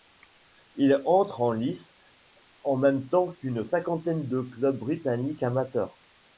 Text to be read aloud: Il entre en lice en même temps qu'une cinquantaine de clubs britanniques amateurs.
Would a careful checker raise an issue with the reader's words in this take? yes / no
no